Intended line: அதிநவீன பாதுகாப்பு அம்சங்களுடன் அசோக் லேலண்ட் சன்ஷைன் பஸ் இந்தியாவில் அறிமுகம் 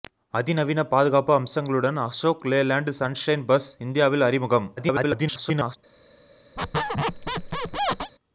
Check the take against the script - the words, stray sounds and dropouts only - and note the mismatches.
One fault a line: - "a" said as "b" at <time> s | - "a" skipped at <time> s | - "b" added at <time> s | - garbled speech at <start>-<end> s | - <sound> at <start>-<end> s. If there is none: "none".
- garbled speech at 4.8-5.8 s
- squeak at 6.6-8.1 s